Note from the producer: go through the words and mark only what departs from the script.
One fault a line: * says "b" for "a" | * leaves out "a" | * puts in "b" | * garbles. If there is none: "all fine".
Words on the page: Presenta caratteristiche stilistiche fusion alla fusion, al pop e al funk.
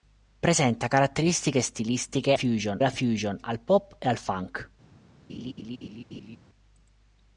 all fine